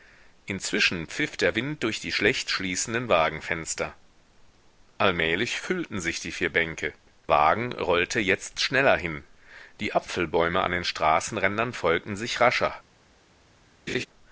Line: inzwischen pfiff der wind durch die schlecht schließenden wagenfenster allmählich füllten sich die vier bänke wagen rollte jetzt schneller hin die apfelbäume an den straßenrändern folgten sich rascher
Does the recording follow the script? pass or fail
pass